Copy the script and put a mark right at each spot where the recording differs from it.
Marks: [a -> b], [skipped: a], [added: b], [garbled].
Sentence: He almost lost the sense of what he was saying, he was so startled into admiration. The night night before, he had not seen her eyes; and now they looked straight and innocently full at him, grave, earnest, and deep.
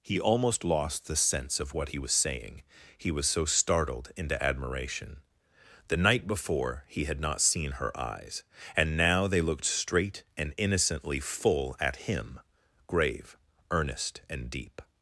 He almost lost the sense of what he was saying, he was so startled into admiration. The night [skipped: night] before, he had not seen her eyes; and now they looked straight and innocently full at him, grave, earnest, and deep.